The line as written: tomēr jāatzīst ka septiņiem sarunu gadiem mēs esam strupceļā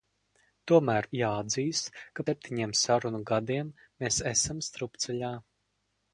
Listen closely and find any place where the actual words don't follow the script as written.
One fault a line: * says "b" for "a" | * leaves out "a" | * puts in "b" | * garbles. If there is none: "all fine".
all fine